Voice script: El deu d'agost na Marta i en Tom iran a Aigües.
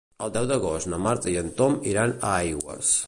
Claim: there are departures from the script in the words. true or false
false